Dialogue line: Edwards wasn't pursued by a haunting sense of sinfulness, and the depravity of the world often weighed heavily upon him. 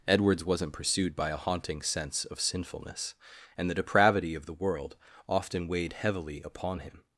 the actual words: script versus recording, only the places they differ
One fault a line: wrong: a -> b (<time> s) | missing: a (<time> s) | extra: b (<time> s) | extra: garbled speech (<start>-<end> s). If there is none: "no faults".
no faults